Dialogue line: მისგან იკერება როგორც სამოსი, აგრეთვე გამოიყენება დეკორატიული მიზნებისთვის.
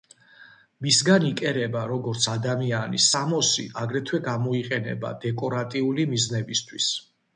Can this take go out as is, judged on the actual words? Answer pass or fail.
fail